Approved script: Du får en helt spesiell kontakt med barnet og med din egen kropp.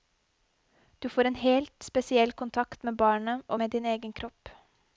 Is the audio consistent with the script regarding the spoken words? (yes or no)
yes